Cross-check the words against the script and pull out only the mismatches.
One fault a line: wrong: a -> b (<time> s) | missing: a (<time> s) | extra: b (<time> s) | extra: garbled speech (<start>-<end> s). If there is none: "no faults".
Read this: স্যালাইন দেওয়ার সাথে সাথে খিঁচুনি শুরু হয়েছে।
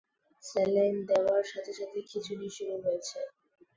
no faults